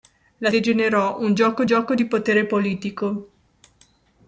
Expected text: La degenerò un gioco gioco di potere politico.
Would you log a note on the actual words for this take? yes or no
no